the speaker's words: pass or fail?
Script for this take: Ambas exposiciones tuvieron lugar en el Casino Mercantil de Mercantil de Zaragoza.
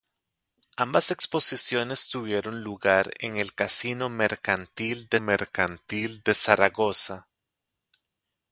pass